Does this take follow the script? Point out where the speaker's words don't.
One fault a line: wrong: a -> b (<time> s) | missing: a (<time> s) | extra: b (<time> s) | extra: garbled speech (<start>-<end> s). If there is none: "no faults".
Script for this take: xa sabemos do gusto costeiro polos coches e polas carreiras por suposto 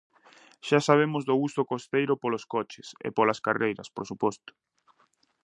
no faults